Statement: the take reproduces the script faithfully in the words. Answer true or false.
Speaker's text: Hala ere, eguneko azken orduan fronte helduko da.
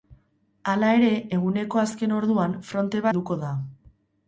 true